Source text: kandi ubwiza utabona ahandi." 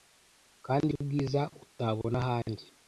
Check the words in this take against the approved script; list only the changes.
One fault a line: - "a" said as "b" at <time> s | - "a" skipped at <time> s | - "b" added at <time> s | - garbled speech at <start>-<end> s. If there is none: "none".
none